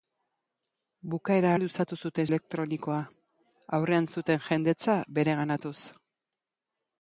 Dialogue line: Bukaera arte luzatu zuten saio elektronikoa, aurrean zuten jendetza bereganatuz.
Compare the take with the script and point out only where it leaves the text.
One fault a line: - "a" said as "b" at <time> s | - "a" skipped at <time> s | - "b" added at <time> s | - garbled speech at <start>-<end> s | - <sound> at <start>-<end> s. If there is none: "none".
- "arte" skipped at 1.5 s
- "saio" skipped at 2.3 s